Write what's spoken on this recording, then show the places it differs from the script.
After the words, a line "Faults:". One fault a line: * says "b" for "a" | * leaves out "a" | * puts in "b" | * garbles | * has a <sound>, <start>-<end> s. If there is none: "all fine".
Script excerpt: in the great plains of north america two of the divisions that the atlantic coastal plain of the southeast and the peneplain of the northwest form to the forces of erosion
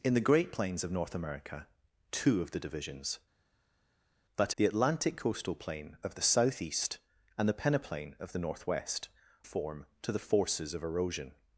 in the great plains of north america two of the divisions that the atlantic coastal plain of the southeast and the peneplain of the northwest form to the forces of erosion
Faults:
all fine